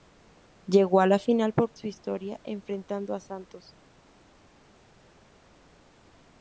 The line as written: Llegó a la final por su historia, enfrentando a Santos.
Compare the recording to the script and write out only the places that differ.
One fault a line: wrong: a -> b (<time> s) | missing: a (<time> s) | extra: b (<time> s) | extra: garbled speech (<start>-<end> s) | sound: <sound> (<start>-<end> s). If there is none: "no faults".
no faults